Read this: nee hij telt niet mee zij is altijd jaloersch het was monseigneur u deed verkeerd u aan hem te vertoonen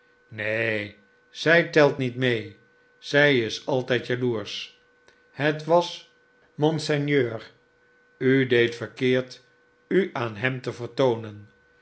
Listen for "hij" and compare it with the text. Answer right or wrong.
wrong